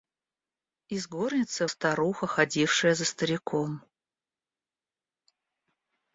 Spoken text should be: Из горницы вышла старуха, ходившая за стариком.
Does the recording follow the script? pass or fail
fail